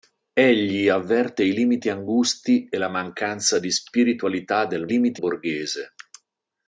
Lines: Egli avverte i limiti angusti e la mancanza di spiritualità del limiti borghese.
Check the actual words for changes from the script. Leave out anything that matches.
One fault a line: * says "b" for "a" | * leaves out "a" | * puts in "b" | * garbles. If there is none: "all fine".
all fine